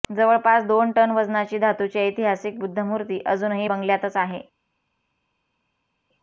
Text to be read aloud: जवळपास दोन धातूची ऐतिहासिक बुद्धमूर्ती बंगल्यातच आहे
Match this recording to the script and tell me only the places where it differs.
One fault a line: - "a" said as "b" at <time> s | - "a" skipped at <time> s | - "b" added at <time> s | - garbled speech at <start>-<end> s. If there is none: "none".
- "टन वजनाची" added at 0.9 s
- "अजूनही" added at 3.2 s